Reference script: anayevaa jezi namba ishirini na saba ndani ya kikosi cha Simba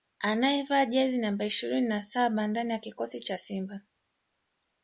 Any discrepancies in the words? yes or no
no